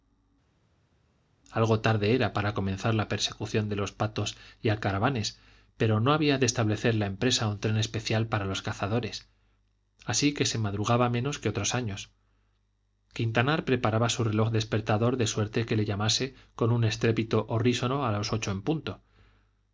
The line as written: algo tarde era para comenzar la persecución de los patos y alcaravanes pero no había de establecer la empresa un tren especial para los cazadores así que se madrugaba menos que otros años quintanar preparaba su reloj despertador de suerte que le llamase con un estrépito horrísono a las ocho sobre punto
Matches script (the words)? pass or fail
fail